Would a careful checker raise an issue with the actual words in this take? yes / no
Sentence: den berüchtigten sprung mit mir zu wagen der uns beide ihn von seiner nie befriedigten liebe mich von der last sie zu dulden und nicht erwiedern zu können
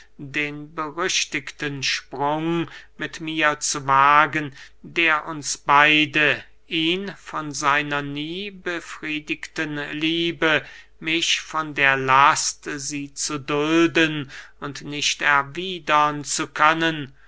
no